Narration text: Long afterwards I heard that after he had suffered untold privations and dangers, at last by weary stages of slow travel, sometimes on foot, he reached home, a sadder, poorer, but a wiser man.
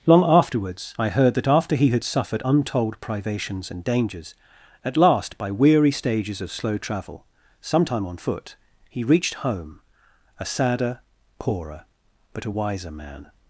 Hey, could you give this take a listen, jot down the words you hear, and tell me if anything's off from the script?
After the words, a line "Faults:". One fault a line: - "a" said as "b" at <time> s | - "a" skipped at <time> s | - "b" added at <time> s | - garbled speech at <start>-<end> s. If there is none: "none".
Long afterwards I heard that after he had suffered untold privations and dangers, at last by weary stages of slow travel, sometime on foot, he reached home, a sadder, poorer, but a wiser man.
Faults:
- "sometimes" said as "sometime" at 7.6 s